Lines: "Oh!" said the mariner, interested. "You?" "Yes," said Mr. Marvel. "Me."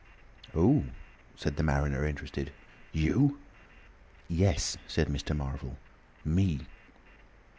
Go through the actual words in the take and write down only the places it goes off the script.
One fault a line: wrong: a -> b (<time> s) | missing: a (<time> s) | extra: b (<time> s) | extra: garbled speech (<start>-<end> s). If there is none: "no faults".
no faults